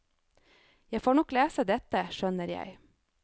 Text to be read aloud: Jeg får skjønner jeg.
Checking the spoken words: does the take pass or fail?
fail